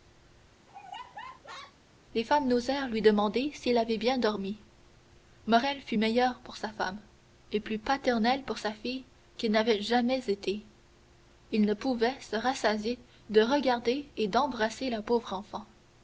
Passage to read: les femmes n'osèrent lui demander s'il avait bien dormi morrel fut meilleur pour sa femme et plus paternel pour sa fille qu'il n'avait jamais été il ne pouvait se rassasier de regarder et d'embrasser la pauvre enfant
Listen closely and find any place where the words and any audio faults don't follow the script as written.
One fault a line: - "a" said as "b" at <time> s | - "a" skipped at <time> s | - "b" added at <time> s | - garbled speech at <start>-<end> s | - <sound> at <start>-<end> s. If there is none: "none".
- laugh at 0.7-1.8 s